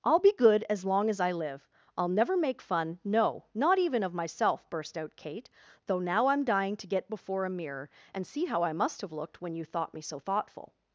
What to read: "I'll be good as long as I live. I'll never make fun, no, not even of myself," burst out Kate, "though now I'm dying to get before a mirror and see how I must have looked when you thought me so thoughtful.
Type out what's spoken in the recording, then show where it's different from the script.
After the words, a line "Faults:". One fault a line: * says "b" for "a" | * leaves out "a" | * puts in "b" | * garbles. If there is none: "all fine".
"I'll be good as long as I live. I'll never make fun, no, not even of myself," burst out Kate, "though now I'm dying to get before a mirror and see how I must have looked when you thought me so thoughtful.
Faults:
all fine